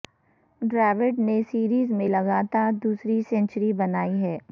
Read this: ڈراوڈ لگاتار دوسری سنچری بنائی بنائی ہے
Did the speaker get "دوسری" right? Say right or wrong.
right